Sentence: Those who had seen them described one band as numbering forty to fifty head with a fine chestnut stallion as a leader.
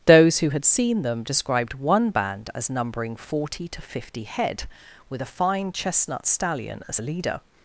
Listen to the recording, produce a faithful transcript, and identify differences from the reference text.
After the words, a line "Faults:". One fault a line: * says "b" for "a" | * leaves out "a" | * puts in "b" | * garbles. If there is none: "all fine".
Those who had seen them described one band as numbering forty to fifty head with a fine chestnut stallion as a leader.
Faults:
all fine